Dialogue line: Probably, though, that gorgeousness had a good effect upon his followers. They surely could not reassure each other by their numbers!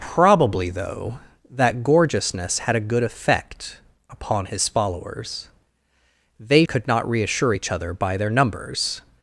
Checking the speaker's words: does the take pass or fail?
fail